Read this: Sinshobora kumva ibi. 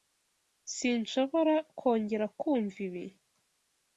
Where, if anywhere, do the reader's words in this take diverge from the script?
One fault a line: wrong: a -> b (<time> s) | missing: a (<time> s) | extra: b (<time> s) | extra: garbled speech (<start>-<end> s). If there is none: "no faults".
extra: kongera (1.8 s)